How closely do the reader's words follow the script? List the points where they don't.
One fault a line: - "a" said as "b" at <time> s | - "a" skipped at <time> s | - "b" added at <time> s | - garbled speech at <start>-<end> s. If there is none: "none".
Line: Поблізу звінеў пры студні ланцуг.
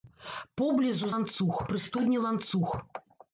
- "звінеў" said as "ланцуг" at 1.1 s